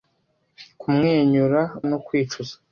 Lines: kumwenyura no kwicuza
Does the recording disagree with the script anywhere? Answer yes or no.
no